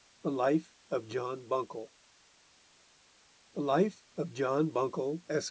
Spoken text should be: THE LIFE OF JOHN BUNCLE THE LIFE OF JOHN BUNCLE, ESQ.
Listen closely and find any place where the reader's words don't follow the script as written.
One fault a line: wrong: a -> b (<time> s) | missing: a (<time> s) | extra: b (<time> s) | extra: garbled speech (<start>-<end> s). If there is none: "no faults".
no faults